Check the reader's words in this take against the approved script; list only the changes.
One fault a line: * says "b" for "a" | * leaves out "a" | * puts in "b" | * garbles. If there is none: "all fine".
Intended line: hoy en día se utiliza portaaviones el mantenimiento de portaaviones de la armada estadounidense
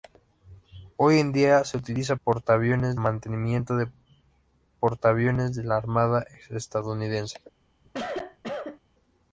all fine